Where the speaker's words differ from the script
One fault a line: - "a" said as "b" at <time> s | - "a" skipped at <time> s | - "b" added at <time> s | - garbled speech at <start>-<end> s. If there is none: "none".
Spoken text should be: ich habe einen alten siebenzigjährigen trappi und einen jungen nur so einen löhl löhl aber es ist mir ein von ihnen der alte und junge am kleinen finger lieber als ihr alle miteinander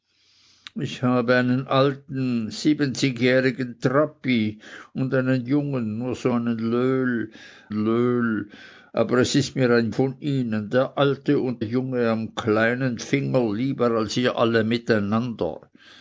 none